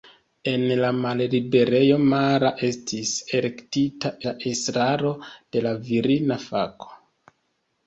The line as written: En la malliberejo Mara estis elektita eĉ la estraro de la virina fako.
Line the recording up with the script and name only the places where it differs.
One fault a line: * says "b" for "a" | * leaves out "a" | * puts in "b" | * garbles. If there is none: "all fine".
* leaves out "eĉ"